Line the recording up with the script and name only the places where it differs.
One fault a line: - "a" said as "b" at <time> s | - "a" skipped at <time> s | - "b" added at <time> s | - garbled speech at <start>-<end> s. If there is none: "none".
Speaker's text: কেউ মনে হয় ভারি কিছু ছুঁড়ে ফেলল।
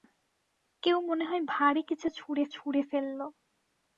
- "ছুঁড়ে" added at 2.5 s